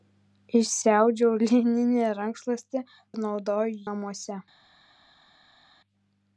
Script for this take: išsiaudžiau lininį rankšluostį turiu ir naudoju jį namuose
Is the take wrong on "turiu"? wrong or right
wrong